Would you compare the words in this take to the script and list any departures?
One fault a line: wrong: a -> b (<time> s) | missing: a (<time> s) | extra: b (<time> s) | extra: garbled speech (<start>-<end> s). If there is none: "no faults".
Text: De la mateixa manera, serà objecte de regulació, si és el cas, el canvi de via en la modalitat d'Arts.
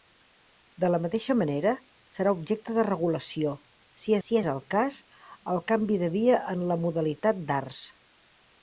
extra: si (4.3 s)